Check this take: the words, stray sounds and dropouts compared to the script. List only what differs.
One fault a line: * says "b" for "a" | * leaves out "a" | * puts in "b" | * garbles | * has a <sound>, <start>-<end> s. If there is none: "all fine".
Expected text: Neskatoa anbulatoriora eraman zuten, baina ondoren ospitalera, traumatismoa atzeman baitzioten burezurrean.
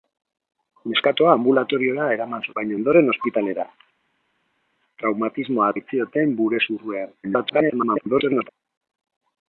* leaves out "zuten"
* leaves out "atzeman"
* garbles